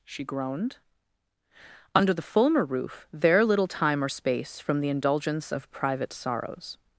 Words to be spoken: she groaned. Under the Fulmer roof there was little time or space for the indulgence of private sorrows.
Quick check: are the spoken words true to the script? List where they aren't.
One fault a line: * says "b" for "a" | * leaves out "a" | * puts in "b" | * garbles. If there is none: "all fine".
* leaves out "was"
* says "from" for "for"